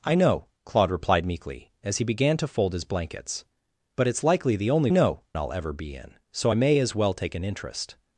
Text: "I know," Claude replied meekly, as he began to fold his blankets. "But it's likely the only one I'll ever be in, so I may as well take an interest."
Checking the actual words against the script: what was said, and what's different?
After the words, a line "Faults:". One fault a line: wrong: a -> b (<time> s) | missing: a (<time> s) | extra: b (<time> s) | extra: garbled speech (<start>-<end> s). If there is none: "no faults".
"I know," Claude replied meekly, as he began to fold his blankets. "But it's likely the only know I'll ever be in, so I may as well take an interest."
Faults:
wrong: one -> know (4.9 s)